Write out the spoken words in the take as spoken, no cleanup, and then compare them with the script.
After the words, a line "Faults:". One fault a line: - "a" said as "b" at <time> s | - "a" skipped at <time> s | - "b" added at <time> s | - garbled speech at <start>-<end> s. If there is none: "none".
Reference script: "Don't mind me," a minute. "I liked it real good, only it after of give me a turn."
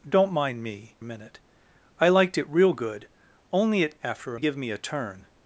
"Don't mind me," a minute. "I liked it real good, only it after of give me a turn."
Faults:
none